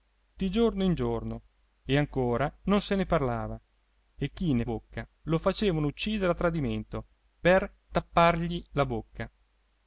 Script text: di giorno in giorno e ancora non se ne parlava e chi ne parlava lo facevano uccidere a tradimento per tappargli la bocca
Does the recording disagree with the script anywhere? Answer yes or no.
yes